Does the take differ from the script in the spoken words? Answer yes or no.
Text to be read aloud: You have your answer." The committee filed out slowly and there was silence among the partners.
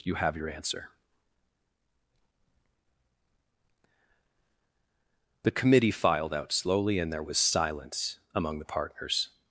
no